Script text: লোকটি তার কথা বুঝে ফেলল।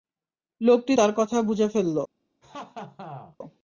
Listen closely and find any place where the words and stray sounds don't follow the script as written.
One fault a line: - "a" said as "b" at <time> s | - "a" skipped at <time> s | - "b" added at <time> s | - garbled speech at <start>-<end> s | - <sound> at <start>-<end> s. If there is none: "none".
- laugh at 2.4-3.4 s